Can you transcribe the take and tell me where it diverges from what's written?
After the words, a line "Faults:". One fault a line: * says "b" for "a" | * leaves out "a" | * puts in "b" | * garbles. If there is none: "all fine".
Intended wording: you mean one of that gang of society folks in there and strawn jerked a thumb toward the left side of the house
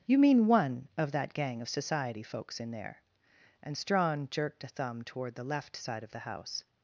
you mean one of that gang of society folks in there and strawn jerked a thumb toward the left side of the house
Faults:
all fine